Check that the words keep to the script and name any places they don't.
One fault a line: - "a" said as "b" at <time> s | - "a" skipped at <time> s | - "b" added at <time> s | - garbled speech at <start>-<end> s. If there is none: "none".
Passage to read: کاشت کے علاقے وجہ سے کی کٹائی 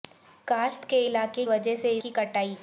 none